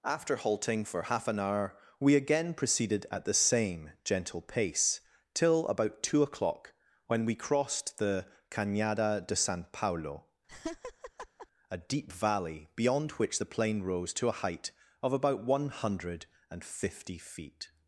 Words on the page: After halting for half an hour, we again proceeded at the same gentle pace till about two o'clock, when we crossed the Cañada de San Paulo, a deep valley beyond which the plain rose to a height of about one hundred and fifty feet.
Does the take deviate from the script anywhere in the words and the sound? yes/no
yes